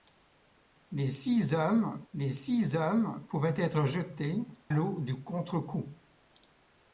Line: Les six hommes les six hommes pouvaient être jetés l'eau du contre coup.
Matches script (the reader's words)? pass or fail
pass